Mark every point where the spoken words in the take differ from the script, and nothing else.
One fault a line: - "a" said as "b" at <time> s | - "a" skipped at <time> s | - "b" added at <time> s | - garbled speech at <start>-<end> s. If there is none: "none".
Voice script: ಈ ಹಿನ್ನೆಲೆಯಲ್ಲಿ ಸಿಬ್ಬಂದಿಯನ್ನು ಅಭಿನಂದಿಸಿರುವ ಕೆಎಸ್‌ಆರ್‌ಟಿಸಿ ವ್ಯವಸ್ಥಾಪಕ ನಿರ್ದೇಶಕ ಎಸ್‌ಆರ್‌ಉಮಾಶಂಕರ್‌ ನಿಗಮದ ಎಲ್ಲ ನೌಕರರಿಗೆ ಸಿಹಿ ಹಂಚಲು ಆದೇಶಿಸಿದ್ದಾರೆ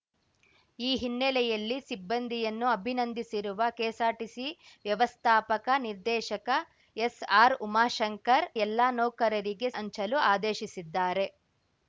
- "ನಿಗಮದ" skipped at 8.5 s
- "ಸಿಹಿ" skipped at 9.7 s